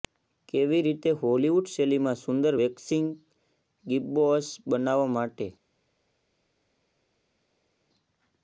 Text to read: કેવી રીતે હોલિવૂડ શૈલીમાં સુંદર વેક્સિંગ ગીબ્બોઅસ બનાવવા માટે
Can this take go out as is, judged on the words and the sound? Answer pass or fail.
pass